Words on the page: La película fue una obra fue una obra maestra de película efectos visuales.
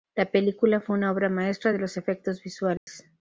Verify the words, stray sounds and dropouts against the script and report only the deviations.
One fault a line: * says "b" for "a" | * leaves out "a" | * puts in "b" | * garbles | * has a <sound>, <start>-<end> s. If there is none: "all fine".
* leaves out "fue una obra"
* says "los" for "película"
* has a dropout, 2.8-2.9 s